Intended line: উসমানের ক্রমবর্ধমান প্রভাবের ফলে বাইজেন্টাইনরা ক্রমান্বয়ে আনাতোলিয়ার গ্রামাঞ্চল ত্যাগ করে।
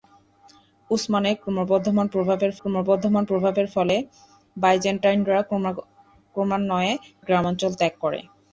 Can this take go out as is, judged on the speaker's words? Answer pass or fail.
fail